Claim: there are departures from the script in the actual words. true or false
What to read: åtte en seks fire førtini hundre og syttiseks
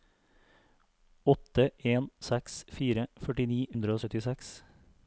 false